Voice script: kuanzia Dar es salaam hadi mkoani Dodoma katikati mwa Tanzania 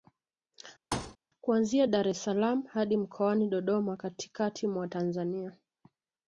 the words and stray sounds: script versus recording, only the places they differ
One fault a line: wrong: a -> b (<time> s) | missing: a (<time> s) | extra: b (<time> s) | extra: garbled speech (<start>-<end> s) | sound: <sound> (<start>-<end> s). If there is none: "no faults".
sound: thud (0.9-1.2 s)